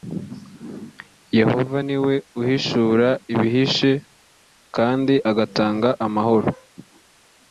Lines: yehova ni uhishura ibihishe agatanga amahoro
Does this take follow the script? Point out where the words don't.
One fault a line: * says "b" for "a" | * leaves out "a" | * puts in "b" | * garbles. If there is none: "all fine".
* puts in "we"
* puts in "kandi"